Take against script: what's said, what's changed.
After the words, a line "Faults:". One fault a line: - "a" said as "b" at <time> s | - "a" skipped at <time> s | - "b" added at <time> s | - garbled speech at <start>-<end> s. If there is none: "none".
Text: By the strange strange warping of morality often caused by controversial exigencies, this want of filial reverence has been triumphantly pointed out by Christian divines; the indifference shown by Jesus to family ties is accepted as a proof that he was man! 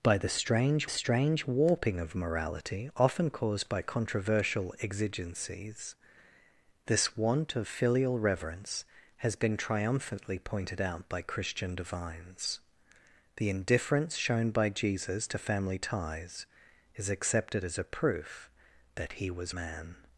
By the strange strange warping of morality often caused by controversial exigencies, this want of filial reverence has been triumphantly pointed out by Christian divines; the indifference shown by Jesus to family ties is accepted as a proof that he was man!
Faults:
none